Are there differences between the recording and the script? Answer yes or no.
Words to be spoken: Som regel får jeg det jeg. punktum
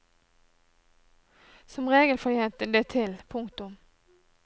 yes